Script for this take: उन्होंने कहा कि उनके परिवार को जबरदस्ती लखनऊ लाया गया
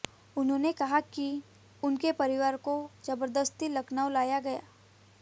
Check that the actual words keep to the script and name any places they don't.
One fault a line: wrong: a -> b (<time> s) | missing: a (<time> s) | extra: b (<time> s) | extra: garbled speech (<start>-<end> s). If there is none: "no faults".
no faults